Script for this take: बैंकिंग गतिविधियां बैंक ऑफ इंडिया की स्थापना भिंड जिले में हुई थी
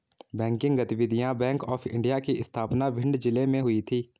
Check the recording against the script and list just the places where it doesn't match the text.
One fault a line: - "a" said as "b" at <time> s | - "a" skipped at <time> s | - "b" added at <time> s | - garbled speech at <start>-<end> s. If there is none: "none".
none